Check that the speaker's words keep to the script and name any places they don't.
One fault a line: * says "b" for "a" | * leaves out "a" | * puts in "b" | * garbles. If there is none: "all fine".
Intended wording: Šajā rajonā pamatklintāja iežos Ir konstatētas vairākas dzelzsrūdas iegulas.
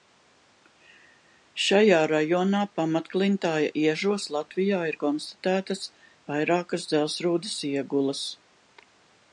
* puts in "Latvijā"